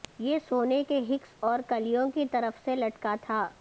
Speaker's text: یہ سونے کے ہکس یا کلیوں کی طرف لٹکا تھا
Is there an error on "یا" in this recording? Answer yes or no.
yes